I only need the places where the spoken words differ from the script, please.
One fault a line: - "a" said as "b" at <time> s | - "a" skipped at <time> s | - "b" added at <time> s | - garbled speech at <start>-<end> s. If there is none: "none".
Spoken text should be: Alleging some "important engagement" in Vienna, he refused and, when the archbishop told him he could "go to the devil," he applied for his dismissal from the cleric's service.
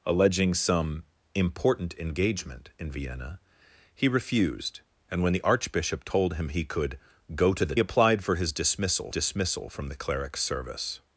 - "devil he" skipped at 7.8 s
- "dismissal" added at 9.1 s